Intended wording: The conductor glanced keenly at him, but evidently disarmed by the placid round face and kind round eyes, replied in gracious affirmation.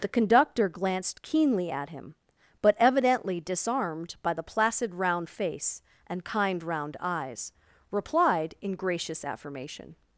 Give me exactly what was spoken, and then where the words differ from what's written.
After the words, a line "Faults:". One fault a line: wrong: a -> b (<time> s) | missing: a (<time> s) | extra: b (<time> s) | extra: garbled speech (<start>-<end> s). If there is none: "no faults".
The conductor glanced keenly at him, but evidently disarmed by the placid round face and kind round eyes, replied in gracious affirmation.
Faults:
no faults